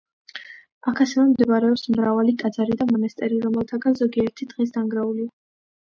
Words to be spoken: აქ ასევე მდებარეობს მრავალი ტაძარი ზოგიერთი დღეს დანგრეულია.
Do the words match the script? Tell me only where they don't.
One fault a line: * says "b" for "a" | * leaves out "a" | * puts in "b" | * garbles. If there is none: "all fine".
* puts in "და მონასტერი რომელთაგან"